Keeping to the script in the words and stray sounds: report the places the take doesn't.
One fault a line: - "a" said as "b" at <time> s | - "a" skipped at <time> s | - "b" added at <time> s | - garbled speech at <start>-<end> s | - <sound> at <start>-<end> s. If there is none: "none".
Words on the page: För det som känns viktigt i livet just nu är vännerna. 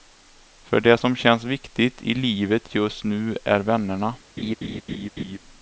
- laugh at 4.4-5.4 s